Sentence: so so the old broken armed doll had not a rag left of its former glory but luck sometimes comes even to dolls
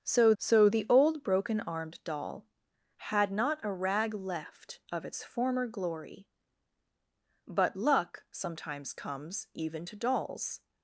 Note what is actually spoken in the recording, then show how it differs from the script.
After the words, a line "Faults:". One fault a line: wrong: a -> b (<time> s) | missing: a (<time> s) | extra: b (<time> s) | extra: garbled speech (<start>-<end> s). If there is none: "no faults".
so so the old broken armed doll had not a rag left of its former glory but luck sometimes comes even to dolls
Faults:
no faults